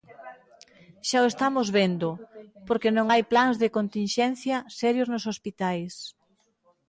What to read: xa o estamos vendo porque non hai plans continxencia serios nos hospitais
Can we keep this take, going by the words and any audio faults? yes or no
no